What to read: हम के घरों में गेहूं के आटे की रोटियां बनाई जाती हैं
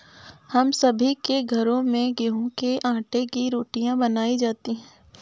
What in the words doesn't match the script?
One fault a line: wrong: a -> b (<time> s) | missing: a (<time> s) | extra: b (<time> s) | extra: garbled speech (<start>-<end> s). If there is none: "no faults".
extra: सभी (0.7 s)